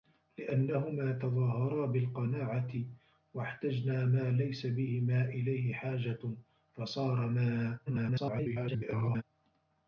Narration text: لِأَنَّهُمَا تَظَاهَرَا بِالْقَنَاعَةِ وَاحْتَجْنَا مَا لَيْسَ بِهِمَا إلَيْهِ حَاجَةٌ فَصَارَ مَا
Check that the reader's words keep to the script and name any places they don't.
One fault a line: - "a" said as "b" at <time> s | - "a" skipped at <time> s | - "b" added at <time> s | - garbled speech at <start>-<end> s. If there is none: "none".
- garbled speech at 7.9-9.2 s